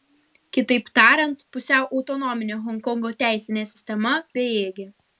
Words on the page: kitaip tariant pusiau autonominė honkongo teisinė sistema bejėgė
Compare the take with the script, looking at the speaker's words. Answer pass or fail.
pass